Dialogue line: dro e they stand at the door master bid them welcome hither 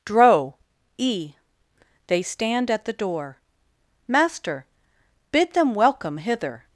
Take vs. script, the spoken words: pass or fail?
pass